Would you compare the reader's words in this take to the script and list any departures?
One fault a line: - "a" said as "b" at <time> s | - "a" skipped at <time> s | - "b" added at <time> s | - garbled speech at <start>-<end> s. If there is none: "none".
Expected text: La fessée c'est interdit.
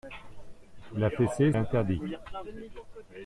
- "c'est" skipped at 1.5 s